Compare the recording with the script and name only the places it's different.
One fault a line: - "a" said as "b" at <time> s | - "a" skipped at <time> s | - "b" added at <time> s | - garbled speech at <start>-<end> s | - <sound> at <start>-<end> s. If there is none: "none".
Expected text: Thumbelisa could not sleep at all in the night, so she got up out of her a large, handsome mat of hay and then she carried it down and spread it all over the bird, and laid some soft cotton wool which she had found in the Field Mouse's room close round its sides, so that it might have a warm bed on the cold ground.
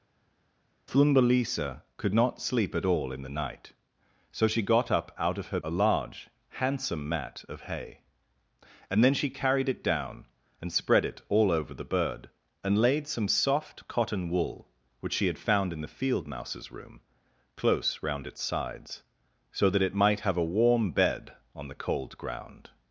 none